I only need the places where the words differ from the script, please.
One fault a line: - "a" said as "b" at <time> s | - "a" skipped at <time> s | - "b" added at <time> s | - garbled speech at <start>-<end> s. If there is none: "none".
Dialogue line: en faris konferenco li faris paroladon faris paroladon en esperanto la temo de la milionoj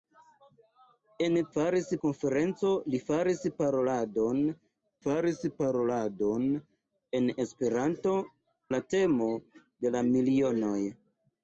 none